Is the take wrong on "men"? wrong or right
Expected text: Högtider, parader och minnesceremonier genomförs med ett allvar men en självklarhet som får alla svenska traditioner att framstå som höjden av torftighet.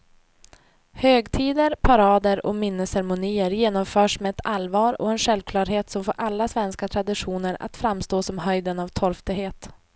wrong